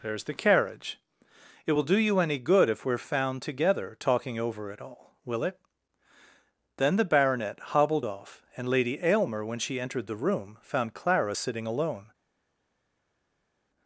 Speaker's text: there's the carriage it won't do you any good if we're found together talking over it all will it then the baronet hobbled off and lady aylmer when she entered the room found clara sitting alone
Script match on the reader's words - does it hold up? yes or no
no